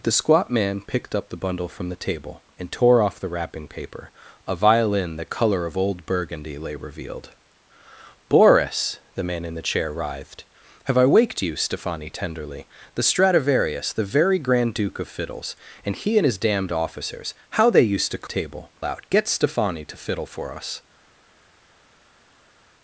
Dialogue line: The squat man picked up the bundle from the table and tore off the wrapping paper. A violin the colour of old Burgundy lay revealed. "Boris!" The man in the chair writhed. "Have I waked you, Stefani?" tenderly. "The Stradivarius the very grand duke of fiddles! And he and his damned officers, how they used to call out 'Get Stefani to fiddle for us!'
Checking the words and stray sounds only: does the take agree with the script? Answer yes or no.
no